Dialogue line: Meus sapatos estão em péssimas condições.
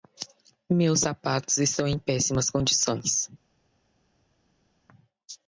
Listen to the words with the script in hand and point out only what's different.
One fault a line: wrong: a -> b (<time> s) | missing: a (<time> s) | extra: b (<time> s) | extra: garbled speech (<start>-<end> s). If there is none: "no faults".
no faults